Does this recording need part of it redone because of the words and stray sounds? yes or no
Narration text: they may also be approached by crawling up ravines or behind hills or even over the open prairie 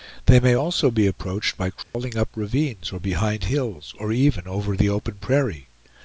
yes